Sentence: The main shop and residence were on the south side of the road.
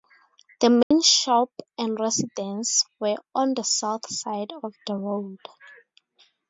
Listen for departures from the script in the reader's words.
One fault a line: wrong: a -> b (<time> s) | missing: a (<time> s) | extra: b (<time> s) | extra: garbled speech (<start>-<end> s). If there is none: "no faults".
no faults